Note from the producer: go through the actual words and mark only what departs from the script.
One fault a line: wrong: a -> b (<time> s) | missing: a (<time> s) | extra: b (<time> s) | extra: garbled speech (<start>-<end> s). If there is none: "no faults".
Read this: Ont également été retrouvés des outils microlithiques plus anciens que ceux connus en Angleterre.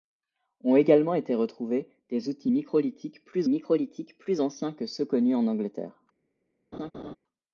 extra: microlithiques plus (3.5 s)